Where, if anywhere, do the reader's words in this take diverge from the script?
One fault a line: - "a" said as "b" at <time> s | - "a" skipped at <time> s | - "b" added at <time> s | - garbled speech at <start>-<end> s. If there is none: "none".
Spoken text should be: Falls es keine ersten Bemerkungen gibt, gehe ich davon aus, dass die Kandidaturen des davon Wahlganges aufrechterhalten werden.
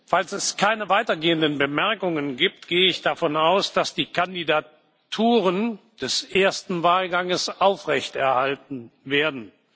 - "ersten" said as "weitergehenden" at 0.9 s
- "davon" said as "ersten" at 6.2 s